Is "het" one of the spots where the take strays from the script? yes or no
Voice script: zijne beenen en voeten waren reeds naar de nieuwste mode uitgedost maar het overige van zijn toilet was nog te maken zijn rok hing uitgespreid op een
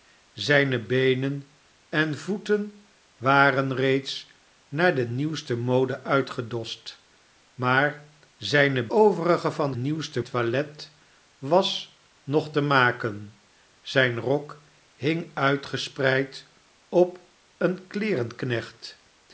yes